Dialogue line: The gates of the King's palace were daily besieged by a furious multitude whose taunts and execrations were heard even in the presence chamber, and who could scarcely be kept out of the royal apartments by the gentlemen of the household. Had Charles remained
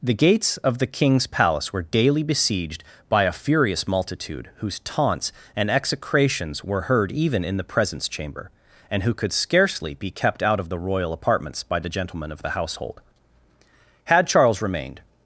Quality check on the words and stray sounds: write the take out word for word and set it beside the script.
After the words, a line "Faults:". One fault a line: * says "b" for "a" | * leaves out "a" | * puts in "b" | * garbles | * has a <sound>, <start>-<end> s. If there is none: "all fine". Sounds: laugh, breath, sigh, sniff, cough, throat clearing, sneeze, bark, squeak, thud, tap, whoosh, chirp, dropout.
The gates of the King's palace were daily besieged by a furious multitude whose taunts and execrations were heard even in the presence chamber, and who could scarcely be kept out of the royal apartments by the gentlemen of the household. Had Charles remained
Faults:
all fine